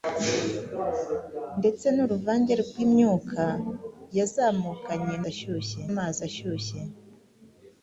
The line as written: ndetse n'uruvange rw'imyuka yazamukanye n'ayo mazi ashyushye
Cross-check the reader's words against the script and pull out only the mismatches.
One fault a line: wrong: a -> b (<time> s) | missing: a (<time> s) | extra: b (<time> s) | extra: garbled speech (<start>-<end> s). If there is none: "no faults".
wrong: n'ayo -> ashyushye (5.3 s)